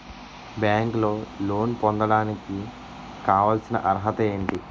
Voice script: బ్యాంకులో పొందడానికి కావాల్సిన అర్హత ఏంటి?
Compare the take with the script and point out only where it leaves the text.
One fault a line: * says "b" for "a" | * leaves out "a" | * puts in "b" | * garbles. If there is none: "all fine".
* puts in "లోన్"